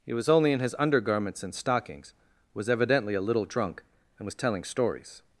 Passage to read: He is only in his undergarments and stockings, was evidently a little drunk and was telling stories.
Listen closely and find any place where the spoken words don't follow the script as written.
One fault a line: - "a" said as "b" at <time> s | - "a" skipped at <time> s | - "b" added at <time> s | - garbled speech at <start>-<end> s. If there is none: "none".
- "is" said as "was" at 0.1 s